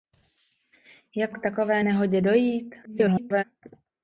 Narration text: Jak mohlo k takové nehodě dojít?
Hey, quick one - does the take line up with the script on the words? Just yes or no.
no